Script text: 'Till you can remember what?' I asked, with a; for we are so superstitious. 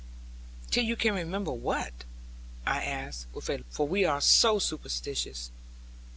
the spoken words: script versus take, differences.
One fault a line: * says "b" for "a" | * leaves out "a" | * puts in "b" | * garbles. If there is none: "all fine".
all fine